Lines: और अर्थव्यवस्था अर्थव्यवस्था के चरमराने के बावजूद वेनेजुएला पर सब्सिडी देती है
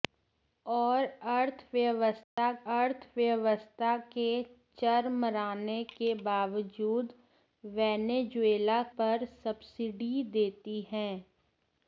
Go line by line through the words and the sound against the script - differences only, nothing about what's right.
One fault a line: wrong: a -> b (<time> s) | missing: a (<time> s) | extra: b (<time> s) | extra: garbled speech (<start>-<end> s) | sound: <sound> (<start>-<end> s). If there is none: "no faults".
sound: dropout (2.2-2.4 s)